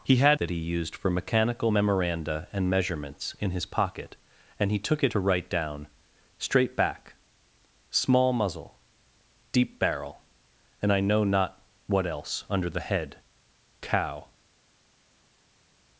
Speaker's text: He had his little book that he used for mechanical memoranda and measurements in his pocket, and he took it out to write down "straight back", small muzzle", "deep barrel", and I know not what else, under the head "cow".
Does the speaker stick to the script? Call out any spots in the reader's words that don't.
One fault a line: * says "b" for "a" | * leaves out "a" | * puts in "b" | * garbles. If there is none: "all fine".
* leaves out "his little book"
* leaves out "out"